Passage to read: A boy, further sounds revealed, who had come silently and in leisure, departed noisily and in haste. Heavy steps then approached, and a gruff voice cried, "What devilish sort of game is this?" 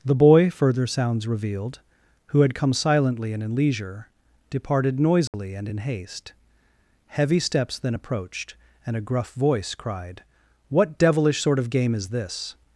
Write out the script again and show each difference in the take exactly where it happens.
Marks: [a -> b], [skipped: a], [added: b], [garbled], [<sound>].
[A -> The] boy, further sounds revealed, who had come silently and in leisure, departed noisily [dropout] and in haste. Heavy steps then approached, and a gruff voice cried, "What devilish sort of game is this?"